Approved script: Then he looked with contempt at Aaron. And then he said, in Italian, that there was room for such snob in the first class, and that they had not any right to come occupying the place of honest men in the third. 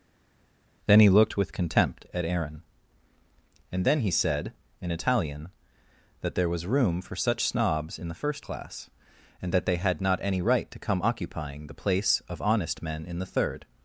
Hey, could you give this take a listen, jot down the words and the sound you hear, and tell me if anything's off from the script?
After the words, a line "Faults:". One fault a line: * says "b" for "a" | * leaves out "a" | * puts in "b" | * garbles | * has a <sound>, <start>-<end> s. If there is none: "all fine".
Then he looked with contempt at Aaron. And then he said, in Italian, that there was room for such snobs in the first class, and that they had not any right to come occupying the place of honest men in the third.
Faults:
* says "snobs" for "snob"